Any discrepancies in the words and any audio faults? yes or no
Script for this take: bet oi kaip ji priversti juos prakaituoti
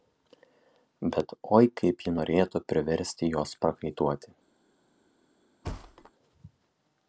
yes